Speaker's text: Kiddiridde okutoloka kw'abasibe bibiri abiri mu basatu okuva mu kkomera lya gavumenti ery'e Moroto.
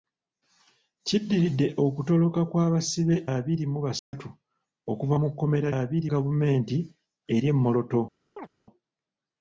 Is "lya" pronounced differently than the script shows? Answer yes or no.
yes